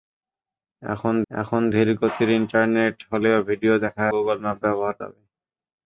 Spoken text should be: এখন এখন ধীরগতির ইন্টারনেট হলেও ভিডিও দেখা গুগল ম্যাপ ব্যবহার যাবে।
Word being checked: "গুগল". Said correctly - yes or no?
yes